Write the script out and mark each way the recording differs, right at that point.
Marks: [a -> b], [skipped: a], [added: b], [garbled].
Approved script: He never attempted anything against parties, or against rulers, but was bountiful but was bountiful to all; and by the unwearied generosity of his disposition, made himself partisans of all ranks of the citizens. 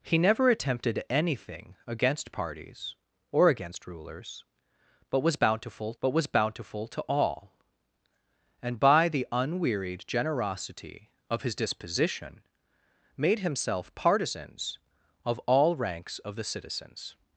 He never attempted anything against parties, or against rulers, but was bountiful but was bountiful to all; and by the unwearied generosity of his disposition, made himself partisans of all ranks of the citizens.